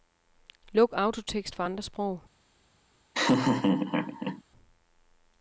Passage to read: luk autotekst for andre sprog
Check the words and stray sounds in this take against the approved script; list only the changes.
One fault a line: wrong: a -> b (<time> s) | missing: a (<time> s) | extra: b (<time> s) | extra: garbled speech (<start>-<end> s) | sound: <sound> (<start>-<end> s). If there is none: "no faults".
sound: laugh (3.1-4.4 s)